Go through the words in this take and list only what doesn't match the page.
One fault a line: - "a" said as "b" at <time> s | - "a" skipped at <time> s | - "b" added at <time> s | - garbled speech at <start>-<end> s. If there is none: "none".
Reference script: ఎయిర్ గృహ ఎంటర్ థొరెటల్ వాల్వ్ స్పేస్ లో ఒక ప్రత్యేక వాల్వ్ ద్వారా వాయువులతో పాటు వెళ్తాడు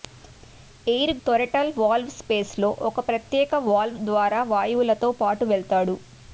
- "గృహ ఎంటర్" skipped at 1.1 s